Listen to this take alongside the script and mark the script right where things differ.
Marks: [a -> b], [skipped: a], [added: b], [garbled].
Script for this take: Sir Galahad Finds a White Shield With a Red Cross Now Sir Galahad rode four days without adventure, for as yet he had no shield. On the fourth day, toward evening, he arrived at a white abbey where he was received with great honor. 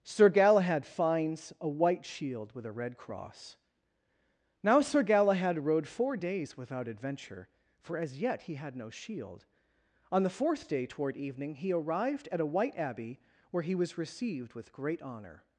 Sir Galahad Finds a White Shield With a Red Cross Now Sir Galahad rode four days without adventure, for as yet he had no shield. On the fourth day, toward evening, he arrived at a white abbey where he was received with great honor.